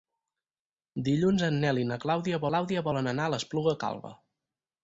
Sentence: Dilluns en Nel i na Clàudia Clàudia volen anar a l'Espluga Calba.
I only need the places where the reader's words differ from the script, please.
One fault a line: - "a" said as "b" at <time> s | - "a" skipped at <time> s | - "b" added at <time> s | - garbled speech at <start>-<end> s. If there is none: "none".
none